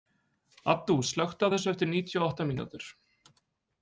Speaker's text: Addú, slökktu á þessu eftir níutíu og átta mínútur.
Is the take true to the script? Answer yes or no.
yes